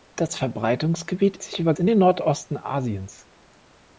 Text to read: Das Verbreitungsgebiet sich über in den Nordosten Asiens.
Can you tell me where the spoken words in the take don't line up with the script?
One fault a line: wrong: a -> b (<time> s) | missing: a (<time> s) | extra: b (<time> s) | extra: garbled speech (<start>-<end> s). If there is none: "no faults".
no faults